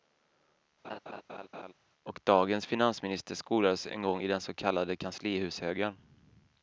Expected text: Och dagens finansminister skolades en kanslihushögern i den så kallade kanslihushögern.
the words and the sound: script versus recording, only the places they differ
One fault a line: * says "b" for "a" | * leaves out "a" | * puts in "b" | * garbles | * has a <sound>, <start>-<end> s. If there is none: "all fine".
* has a laugh, 0.8-1.7 s
* says "gång" for "kanslihushögern"